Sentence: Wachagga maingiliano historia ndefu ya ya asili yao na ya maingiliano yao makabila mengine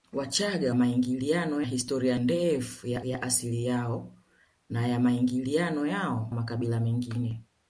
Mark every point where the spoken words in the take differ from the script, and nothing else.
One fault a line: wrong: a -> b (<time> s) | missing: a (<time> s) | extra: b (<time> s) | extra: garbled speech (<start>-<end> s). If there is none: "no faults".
no faults